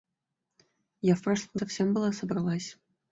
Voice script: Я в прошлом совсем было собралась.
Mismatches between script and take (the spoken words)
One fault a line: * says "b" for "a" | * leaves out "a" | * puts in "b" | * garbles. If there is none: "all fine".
all fine